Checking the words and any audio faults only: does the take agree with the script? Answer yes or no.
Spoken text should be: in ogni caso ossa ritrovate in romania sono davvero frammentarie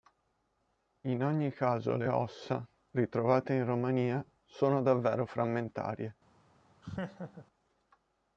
no